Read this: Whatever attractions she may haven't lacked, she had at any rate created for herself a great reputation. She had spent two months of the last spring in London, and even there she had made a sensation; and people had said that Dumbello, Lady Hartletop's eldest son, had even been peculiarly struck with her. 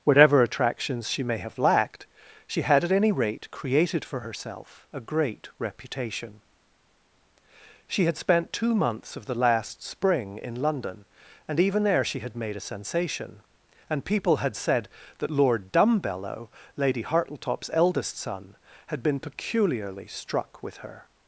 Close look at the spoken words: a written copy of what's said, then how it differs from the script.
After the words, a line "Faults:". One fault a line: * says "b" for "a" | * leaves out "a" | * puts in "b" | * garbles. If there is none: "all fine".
Whatever attractions she may have lacked, she had at any rate created for herself a great reputation. She had spent two months of the last spring in London, and even there she had made a sensation; and people had said that Lord Dumbello, Lady Hartletop's eldest son, had been peculiarly struck with her.
Faults:
* says "have" for "haven't"
* puts in "Lord"
* leaves out "even"